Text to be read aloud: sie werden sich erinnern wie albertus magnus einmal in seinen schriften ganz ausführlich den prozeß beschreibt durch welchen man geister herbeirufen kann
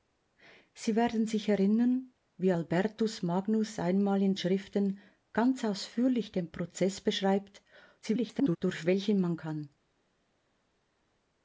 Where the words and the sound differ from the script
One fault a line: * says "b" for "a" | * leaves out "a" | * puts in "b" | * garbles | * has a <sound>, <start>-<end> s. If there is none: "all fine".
* leaves out "seinen"
* garbles
* leaves out "geister herbeirufen"